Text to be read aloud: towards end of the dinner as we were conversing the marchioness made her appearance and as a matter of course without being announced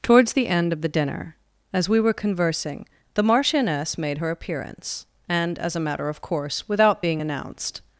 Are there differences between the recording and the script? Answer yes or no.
yes